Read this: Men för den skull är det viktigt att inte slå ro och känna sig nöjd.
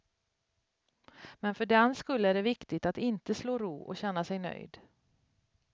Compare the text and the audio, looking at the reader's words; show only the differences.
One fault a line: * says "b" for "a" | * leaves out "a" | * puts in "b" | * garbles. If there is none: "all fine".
all fine